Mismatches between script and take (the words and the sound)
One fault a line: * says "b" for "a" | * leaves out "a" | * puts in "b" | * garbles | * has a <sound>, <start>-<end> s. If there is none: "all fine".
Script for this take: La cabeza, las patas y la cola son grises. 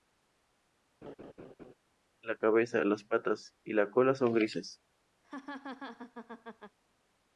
* has a laugh, 1.0-1.7 s
* has a laugh, 5.2-6.8 s